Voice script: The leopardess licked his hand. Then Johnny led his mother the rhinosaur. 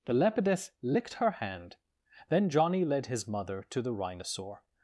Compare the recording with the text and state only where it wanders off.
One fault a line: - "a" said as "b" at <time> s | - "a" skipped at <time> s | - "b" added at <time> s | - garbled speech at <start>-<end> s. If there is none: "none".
- "his" said as "her" at 1.1 s
- "to" added at 3.7 s